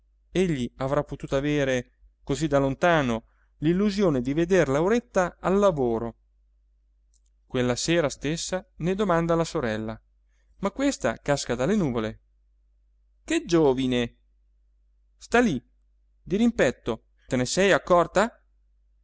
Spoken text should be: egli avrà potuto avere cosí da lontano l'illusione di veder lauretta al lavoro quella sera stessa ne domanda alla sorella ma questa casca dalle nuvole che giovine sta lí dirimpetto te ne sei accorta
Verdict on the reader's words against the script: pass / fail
pass